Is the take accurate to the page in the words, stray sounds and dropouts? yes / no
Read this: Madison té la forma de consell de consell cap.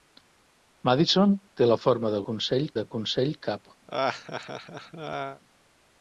no